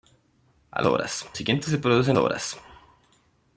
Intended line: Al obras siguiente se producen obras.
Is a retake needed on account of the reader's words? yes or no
no